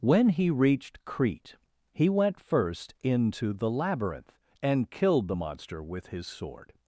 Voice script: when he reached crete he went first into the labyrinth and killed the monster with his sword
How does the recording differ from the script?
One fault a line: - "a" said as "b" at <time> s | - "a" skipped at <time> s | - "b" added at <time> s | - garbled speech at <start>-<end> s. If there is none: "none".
none